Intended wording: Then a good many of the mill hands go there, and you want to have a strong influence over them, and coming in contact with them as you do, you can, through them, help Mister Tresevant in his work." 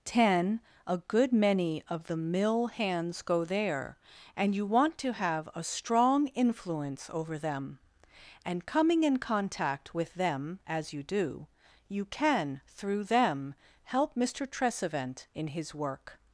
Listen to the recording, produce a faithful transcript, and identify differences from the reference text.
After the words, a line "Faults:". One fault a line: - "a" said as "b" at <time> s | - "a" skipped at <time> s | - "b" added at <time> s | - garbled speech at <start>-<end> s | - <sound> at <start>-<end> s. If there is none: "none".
Ten a good many of the mill hands go there, and you want to have a strong influence over them, and coming in contact with them as you do, you can, through them, help Mister Tresevant in his work."
Faults:
- "Then" said as "Ten" at 0.0 s